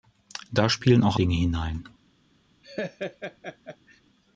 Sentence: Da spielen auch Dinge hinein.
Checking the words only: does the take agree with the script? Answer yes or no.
yes